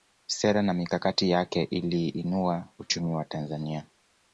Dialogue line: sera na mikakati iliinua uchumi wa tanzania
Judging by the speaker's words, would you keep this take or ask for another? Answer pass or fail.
fail